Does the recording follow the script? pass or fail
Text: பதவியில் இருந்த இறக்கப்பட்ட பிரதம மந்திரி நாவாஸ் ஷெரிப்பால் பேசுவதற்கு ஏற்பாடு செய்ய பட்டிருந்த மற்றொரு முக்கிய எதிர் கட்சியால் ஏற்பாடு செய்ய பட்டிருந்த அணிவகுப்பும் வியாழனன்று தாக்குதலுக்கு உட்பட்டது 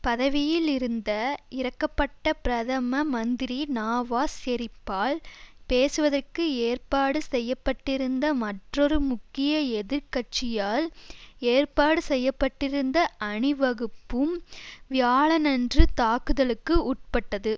pass